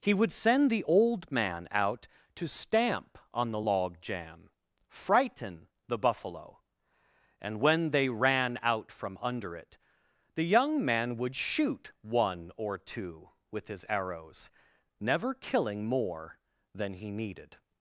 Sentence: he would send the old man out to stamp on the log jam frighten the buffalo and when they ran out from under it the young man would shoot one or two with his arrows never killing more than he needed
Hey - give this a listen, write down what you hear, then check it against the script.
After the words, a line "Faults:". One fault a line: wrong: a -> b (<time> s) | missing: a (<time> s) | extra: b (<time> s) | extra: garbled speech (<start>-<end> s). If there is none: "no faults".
he would send the old man out to stamp on the log jam frighten the buffalo and when they ran out from under it the young man would shoot one or two with his arrows never killing more than he needed
Faults:
no faults